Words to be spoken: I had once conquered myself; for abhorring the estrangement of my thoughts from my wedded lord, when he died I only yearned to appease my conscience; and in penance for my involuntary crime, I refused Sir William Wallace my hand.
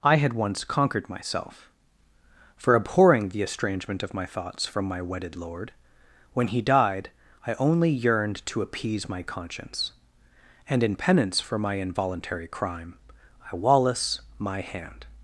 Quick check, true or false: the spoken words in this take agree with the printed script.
false